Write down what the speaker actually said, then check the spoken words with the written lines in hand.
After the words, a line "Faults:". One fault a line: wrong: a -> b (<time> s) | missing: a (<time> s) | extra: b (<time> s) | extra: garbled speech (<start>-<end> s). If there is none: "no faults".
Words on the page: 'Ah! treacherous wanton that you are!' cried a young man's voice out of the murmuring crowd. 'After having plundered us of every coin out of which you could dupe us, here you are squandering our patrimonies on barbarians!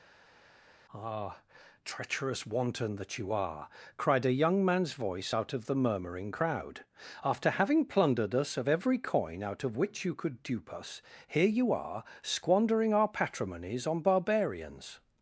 'Ah! treacherous wanton that you are!' cried a young man's voice out of the murmuring crowd. 'After having plundered us of every coin out of which you could dupe us, here you are squandering our patrimonies on barbarians!
Faults:
no faults